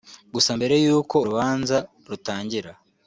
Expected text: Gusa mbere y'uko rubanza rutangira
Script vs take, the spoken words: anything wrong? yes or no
no